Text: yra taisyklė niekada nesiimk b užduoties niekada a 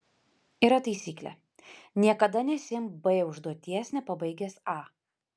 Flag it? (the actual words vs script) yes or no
yes